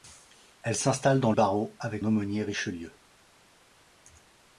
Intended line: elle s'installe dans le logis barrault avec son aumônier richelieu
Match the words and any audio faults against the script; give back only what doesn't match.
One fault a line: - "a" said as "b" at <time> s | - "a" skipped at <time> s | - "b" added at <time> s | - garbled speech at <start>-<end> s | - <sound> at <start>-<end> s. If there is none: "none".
- "le logis" skipped at 1.3 s
- "son" skipped at 2.0 s